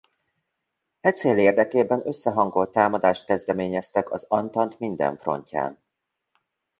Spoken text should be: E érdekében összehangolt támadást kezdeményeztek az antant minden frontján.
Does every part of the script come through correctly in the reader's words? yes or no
no